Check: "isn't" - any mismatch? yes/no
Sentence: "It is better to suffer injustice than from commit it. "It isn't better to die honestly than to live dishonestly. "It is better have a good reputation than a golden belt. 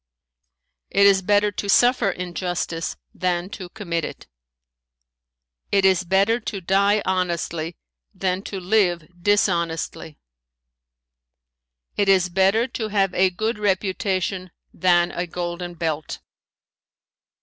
yes